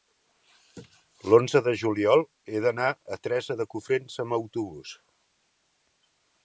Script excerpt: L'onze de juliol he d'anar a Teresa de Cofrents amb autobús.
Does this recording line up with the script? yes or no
yes